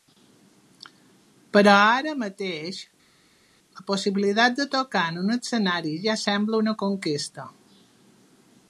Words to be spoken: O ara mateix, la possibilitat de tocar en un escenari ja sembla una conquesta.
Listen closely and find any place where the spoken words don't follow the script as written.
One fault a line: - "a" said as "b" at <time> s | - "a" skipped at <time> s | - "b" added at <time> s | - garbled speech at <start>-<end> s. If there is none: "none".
- "O" said as "Però" at 1.6 s